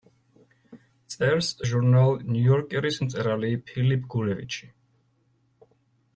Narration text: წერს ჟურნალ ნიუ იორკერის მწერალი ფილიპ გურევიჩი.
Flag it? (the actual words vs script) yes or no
no